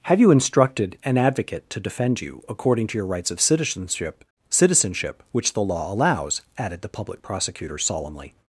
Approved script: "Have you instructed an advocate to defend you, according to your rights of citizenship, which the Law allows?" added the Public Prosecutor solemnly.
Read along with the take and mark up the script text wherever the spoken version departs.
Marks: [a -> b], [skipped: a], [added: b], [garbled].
"Have you instructed an advocate to defend you, according to your rights of citizenship, [added: citizenship] which the Law allows?" added the Public Prosecutor solemnly.